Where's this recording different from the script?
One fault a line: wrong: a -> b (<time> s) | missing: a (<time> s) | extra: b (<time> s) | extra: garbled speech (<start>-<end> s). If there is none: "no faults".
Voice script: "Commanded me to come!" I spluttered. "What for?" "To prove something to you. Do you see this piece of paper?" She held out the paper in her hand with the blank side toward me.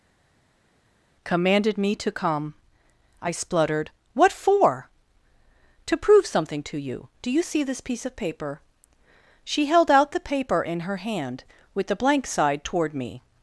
no faults